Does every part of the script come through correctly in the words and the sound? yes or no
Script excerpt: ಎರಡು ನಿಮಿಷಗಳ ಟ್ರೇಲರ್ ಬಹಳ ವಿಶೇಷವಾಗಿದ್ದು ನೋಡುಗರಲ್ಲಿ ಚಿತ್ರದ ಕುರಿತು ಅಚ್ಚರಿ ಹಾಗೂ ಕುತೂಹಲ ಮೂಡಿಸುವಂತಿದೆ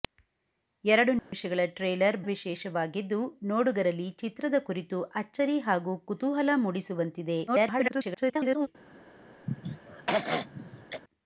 no